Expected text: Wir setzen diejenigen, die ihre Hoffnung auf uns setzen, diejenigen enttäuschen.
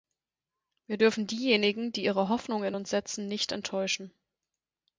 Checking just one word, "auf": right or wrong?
wrong